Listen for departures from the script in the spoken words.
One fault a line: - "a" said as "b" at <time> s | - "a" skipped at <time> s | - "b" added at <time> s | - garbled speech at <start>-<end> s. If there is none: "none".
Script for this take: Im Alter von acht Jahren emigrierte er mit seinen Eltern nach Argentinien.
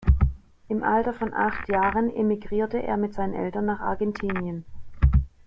none